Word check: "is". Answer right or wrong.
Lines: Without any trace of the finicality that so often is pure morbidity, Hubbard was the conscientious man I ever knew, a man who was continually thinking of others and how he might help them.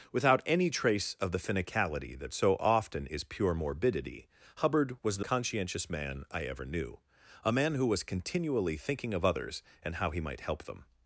right